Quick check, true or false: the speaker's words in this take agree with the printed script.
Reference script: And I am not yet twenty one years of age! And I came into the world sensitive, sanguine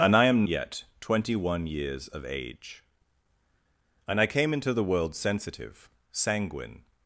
false